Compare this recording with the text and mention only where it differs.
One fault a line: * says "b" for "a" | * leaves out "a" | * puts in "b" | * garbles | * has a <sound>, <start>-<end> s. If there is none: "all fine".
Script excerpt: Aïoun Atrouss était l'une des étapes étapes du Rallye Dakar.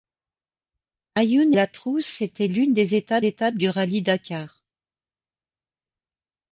all fine